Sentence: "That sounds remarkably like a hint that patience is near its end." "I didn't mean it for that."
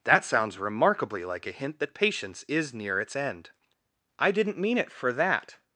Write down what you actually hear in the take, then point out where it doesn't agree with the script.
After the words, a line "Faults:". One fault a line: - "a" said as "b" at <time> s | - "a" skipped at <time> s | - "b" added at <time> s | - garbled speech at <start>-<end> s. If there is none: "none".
"That sounds remarkably like a hint that patience is near its end." "I didn't mean it for that."
Faults:
none